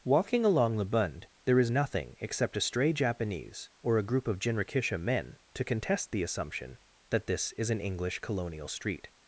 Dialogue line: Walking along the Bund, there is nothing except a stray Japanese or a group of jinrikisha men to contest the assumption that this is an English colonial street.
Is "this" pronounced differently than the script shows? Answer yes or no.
no